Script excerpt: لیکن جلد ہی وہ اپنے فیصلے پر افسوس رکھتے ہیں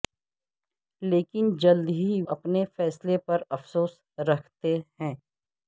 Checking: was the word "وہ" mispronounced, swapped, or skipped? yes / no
yes